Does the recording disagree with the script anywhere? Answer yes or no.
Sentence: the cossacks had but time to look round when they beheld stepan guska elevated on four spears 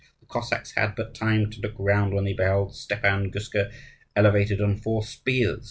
no